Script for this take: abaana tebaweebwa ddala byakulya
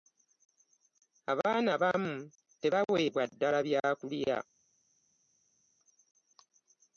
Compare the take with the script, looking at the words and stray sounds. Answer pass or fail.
fail